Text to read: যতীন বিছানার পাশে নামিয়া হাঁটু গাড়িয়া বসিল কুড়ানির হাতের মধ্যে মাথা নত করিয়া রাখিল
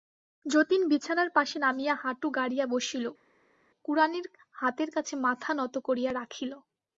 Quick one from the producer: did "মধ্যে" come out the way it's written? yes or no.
no